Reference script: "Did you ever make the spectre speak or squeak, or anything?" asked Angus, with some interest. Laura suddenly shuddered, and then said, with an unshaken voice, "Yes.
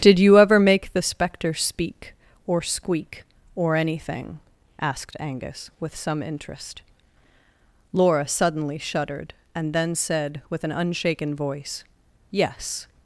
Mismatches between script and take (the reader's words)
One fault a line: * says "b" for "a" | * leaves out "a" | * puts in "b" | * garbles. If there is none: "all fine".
all fine